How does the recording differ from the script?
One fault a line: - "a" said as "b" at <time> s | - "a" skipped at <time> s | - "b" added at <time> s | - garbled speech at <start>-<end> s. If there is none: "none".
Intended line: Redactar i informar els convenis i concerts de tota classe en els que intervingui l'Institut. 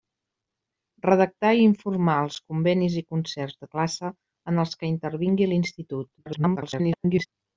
- "tota" skipped at 3.7 s
- garbled speech at 6.2-7.3 s